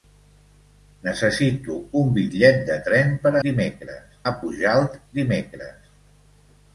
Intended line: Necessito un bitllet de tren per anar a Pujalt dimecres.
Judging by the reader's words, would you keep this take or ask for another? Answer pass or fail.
fail